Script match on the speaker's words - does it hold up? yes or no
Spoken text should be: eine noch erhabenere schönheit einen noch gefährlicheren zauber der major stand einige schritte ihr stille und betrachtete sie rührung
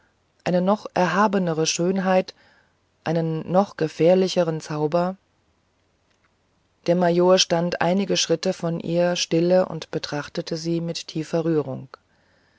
no